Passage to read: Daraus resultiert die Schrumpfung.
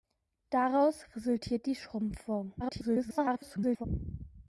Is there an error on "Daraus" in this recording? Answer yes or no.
no